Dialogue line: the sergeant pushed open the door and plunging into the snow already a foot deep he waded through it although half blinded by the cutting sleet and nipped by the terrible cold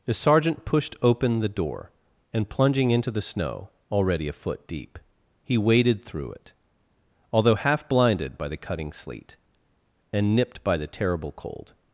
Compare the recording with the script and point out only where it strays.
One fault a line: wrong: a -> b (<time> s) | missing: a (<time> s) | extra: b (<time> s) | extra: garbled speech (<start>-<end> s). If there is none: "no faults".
no faults